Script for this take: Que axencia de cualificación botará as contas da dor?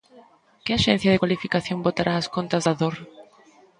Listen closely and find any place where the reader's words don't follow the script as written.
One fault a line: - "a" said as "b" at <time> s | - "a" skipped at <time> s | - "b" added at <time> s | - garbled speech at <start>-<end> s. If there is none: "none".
none